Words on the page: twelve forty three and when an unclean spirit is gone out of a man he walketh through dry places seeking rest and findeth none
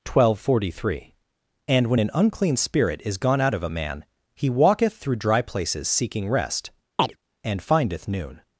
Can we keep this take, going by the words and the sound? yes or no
no